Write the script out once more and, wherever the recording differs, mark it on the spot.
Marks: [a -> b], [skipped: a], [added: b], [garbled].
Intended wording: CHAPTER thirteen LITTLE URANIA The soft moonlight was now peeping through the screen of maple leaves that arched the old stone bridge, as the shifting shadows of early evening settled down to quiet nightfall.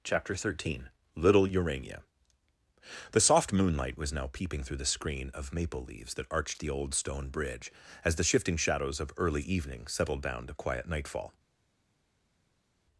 CHAPTER thirteen LITTLE URANIA The soft moonlight was now peeping through the screen of maple leaves that arched the old stone bridge, as the shifting shadows of early evening settled down to quiet nightfall.